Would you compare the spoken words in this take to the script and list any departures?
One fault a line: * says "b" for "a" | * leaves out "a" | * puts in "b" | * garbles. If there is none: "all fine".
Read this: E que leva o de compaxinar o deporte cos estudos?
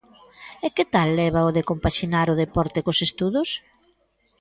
* puts in "tal"